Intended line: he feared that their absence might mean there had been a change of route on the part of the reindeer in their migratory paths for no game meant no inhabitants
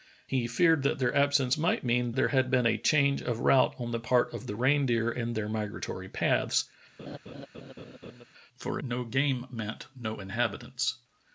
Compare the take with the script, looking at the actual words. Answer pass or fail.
pass